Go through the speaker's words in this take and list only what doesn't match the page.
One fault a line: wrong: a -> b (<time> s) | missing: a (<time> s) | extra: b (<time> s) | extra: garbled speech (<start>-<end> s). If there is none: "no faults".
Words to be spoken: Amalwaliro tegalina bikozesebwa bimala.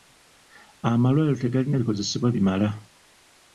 no faults